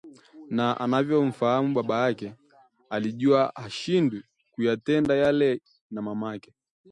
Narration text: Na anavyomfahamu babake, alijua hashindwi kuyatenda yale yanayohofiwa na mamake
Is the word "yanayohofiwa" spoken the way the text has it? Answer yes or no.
no